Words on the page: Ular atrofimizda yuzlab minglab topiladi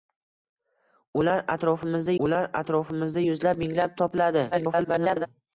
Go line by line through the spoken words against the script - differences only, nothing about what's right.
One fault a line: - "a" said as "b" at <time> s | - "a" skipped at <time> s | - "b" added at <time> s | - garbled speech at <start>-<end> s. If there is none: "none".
- "ular atrofimizda" added at 2.3 s
- garbled speech at 4.5-5.3 s